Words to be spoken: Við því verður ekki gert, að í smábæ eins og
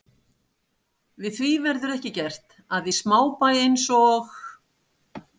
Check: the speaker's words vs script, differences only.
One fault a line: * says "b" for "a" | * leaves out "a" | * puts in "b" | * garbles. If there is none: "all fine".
all fine